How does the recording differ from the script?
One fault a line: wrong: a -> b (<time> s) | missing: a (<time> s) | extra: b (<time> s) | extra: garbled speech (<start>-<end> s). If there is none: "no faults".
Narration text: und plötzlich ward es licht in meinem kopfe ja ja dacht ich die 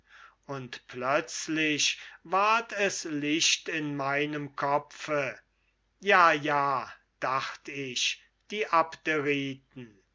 no faults